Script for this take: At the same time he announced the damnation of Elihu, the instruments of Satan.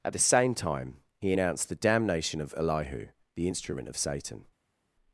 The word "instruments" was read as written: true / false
false